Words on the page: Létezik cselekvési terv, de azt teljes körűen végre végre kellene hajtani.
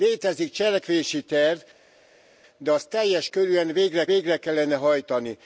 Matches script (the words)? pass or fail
pass